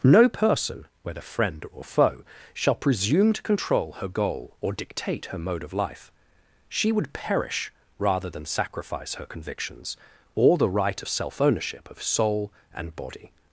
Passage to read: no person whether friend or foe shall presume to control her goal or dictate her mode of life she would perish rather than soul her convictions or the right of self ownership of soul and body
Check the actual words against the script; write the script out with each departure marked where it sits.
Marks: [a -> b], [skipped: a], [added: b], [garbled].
no person whether friend or foe shall presume to control her goal or dictate her mode of life she would perish rather than [soul -> sacrifice] her convictions or the right of self ownership of soul and body